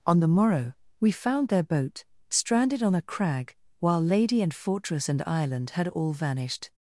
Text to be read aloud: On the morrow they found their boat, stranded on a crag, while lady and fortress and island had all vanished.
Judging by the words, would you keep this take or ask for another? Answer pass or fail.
fail